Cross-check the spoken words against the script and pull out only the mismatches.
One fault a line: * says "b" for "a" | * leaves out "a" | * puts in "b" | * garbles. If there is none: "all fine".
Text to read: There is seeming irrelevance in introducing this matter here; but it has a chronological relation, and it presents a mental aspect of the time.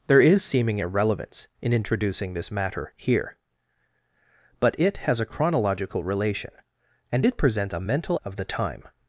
* leaves out "aspect"